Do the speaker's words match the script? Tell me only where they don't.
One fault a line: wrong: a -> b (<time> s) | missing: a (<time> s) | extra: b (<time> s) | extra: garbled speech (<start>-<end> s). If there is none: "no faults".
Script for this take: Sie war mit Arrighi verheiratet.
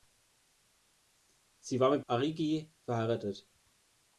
no faults